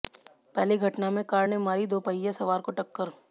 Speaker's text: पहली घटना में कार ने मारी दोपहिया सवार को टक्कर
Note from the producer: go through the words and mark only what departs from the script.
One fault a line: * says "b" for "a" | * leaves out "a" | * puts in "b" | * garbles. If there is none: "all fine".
all fine